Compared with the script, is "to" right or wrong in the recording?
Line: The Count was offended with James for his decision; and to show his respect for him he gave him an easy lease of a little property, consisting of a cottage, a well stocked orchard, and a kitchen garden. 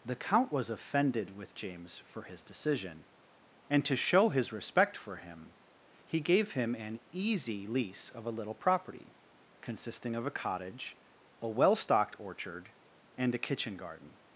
right